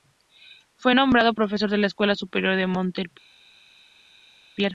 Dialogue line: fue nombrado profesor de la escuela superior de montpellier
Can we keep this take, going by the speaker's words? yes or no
yes